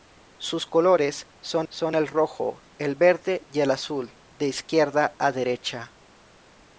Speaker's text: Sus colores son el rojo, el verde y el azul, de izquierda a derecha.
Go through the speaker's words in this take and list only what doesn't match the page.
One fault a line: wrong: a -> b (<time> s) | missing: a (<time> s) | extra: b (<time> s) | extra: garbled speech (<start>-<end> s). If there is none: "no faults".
extra: son (1.7 s)